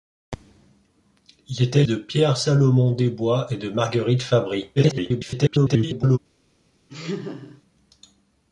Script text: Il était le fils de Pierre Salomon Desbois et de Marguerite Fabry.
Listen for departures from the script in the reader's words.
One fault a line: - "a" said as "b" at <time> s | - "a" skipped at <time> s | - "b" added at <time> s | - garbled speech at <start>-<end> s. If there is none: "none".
- "le fils" skipped at 1.8 s
- garbled speech at 4.8-6.2 s